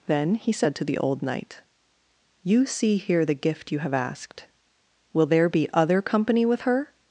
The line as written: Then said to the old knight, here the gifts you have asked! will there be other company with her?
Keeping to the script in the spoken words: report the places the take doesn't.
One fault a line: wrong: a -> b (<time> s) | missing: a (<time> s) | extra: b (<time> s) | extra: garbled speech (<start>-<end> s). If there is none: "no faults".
extra: he (0.3 s)
extra: you see (2.4 s)
wrong: gifts -> gift (3.3 s)